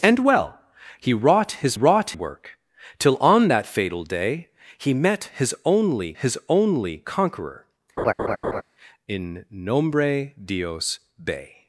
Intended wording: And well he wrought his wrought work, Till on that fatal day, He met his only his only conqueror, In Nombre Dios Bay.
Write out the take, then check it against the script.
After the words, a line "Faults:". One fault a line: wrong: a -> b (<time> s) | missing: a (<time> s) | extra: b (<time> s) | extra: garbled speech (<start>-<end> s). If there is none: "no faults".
And well he wrought his wrought work, Till on that fatal day, He met his only his only conqueror, In Nombre Dios Bay.
Faults:
no faults